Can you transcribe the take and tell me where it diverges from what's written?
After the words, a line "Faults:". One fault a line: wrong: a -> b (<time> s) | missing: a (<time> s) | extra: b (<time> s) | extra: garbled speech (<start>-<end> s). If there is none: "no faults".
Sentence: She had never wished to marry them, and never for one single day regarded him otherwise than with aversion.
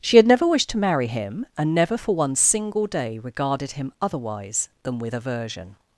She had never wished to marry him, and never for one single day regarded him otherwise than with aversion.
Faults:
wrong: them -> him (1.1 s)